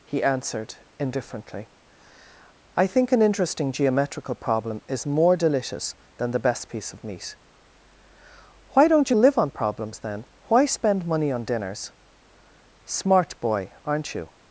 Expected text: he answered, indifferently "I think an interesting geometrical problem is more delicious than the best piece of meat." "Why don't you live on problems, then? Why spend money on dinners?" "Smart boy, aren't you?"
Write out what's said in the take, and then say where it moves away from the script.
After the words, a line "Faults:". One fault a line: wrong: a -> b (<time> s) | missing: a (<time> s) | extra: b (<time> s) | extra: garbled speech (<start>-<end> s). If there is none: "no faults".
he answered, indifferently "I think an interesting geometrical problem is more delicious than the best piece of meat." "Why don't you live on problems, then? Why spend money on dinners?" "Smart boy, aren't you?"
Faults:
no faults